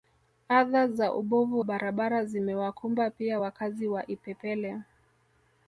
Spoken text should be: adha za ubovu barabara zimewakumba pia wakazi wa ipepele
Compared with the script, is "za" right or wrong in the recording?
right